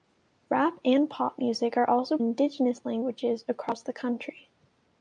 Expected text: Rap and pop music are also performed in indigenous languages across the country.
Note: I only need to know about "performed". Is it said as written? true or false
false